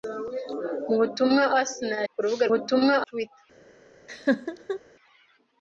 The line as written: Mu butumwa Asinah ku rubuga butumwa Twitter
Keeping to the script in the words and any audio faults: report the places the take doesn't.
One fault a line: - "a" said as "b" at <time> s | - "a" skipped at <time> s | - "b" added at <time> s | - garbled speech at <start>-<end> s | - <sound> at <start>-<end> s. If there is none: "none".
- laugh at 4.1-4.8 s